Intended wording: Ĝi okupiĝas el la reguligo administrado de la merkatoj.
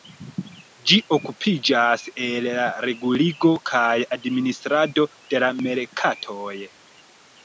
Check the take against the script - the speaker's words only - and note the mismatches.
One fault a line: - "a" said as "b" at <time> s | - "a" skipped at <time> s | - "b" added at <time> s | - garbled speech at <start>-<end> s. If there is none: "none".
- "kaj" added at 3.7 s